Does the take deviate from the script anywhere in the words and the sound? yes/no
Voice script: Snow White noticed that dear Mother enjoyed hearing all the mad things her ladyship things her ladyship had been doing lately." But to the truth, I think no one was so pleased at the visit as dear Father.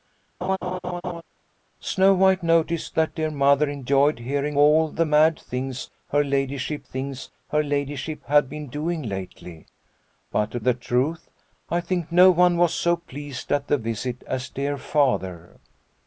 yes